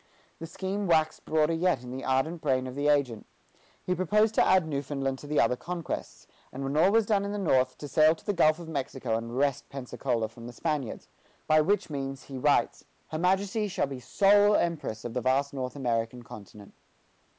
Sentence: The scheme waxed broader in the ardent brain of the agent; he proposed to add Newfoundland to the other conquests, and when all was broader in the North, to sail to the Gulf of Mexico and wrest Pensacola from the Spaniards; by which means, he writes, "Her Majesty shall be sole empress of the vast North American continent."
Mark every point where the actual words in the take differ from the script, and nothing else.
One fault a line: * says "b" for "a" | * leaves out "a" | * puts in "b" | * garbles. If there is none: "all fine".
* puts in "yet"
* says "done" for "broader"